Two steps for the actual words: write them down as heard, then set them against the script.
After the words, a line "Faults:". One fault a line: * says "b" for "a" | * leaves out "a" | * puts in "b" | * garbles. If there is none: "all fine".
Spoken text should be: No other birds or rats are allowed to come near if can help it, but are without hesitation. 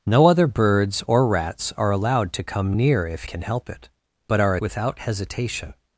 No other birds or rats are allowed to come near if can help it, but are without hesitation.
Faults:
all fine